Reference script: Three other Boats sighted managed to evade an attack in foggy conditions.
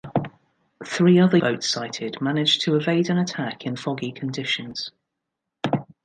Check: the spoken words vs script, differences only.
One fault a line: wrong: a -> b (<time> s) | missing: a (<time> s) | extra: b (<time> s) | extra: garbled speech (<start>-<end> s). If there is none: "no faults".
no faults